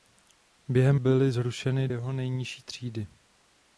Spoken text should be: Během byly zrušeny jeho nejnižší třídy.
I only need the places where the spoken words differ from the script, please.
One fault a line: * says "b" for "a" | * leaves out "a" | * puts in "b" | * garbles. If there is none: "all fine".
all fine